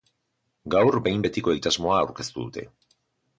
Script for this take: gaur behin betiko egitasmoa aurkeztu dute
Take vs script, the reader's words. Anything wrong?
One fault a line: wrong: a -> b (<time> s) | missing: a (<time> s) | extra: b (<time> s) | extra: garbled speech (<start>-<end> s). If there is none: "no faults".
no faults